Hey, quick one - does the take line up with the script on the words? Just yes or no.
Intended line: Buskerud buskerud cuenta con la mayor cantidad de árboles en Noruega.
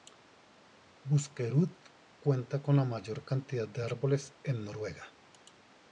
no